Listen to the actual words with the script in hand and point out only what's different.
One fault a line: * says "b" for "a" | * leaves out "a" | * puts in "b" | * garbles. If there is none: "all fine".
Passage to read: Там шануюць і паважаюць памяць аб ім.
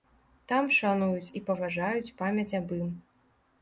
all fine